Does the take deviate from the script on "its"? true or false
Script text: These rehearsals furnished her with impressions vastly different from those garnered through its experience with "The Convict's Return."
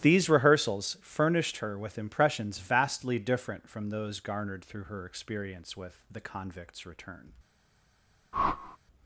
true